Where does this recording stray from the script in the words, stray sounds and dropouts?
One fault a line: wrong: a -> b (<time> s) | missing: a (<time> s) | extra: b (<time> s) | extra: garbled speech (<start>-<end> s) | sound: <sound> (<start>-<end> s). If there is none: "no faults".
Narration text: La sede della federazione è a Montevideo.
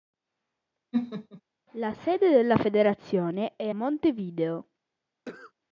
sound: laugh (0.9-1.4 s)
missing: a (3.7 s)
sound: cough (5.2-5.5 s)